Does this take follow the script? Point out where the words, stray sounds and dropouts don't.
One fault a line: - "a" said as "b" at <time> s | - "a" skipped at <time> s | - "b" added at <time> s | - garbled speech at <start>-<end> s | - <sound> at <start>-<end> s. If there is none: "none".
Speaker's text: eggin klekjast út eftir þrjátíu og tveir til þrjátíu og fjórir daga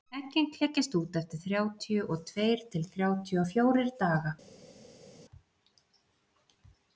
none